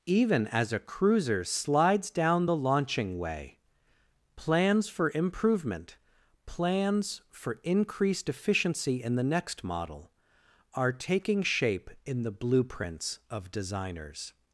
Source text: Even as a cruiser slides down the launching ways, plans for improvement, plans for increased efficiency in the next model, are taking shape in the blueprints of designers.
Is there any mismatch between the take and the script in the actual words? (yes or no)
yes